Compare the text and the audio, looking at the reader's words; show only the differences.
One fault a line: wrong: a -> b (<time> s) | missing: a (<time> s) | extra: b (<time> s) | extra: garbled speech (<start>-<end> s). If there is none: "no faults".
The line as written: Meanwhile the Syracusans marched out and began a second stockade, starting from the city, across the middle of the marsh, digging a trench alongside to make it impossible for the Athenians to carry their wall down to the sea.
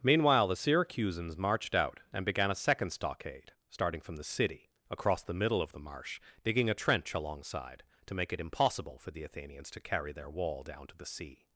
no faults